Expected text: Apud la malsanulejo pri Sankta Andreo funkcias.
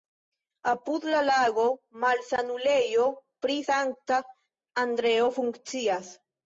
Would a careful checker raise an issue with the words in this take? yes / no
yes